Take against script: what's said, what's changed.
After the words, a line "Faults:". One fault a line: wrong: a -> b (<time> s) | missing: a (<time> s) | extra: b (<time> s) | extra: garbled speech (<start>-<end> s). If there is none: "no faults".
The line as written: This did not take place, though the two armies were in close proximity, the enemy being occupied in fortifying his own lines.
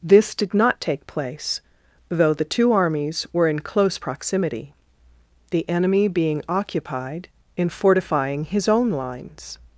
This did not take place, though the two armies were in close proximity, the enemy being occupied in fortifying his own lines.
Faults:
no faults